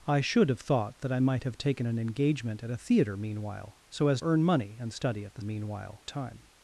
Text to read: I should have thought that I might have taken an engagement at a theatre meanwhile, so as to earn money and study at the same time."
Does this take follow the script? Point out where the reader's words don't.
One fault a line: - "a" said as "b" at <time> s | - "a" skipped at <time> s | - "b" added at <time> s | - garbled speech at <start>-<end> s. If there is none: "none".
- "to" skipped at 4.2 s
- "same" said as "meanwhile" at 5.4 s